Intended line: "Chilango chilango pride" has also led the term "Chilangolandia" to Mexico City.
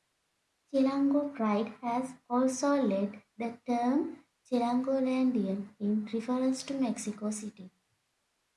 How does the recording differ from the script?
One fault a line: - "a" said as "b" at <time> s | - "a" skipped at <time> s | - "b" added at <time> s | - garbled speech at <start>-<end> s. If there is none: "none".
- "chilango" skipped at 1.4 s
- "in reference" added at 5.8 s